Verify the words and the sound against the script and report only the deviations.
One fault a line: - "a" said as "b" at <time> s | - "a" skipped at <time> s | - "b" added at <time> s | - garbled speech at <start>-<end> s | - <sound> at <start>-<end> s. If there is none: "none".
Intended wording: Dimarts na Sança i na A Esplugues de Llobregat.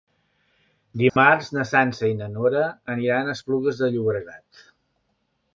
- dropout at 1.1-1.2 s
- "Nora aniran" added at 2.4 s